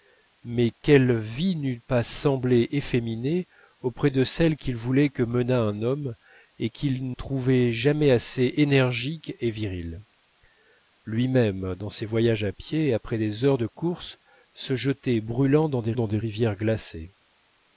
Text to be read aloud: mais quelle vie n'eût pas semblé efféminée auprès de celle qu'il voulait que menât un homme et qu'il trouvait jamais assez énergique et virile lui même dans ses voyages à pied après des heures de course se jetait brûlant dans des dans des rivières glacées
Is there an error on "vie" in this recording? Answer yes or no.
no